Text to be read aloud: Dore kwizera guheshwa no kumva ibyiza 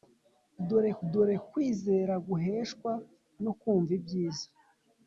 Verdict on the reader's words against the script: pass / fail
fail